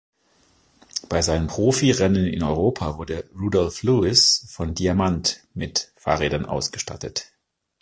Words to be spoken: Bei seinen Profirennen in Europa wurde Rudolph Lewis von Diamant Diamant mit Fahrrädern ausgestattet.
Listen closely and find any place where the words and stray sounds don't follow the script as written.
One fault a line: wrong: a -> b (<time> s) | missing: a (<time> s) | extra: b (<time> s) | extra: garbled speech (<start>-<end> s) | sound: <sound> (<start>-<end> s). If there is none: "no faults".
missing: Diamant (5.4 s)